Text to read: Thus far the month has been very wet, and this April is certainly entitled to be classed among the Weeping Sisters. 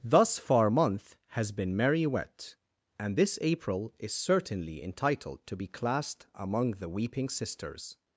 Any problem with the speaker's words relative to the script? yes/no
yes